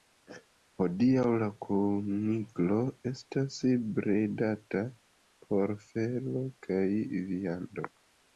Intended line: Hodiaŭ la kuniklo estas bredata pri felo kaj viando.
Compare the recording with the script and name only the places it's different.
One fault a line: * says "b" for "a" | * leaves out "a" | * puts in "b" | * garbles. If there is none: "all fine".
* says "por" for "pri"